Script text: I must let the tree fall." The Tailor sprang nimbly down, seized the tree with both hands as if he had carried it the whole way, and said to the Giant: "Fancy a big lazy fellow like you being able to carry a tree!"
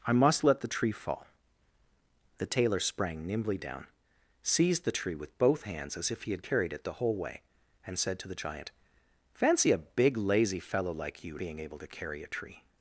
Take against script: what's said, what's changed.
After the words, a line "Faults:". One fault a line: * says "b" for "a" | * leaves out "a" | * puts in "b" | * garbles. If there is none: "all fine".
I must let the tree fall." The Tailor sprang nimbly down, seized the tree with both hands as if he had carried it the whole way, and said to the Giant: "Fancy a big lazy fellow like you being able to carry a tree!"
Faults:
all fine